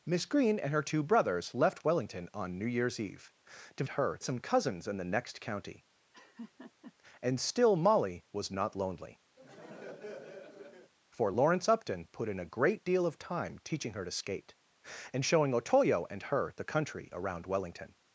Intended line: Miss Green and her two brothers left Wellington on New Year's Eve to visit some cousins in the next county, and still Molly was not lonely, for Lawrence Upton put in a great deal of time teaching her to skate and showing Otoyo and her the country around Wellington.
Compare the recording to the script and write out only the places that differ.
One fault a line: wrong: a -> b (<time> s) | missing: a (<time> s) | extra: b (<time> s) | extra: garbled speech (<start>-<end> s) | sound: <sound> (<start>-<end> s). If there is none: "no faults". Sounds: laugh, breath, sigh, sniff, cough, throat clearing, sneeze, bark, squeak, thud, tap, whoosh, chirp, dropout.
wrong: visit -> her (3.9 s)
sound: laugh (6.1-6.9 s)
sound: laugh (9.4-10.9 s)